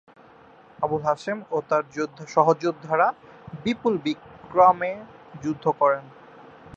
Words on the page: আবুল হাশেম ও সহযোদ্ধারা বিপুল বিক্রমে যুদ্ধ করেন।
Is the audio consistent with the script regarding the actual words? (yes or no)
no